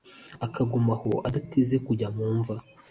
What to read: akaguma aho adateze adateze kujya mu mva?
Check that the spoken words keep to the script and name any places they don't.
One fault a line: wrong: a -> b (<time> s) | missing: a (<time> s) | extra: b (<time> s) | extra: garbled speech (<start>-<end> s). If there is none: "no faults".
missing: adateze (1.8 s)